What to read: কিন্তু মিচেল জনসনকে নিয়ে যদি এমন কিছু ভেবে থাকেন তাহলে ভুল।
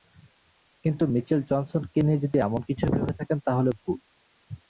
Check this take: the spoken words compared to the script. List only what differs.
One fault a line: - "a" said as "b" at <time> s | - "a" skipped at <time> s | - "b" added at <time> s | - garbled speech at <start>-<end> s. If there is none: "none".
none